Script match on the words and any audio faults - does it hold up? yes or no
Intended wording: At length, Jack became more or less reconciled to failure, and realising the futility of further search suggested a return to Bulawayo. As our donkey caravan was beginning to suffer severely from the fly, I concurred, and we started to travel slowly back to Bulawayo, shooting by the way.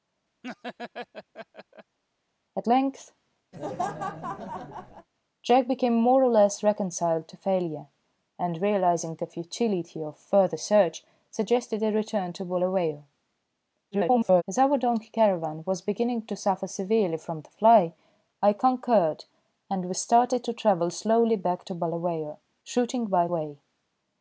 no